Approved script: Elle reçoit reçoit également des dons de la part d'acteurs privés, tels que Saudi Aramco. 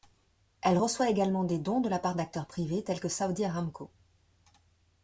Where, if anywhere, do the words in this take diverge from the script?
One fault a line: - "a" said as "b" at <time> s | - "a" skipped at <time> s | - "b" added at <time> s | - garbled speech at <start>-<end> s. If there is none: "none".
- "reçoit" skipped at 1.1 s